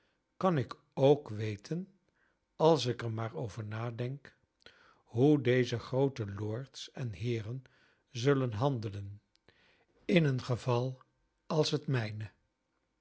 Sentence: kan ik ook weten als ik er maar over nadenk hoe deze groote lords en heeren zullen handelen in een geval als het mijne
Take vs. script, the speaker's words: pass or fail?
pass